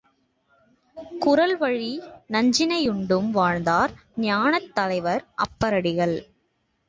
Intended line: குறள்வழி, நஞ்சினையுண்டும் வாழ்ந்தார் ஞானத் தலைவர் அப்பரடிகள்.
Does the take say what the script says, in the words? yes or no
yes